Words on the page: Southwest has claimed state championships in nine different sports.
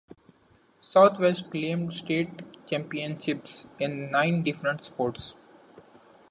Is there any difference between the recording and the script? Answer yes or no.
yes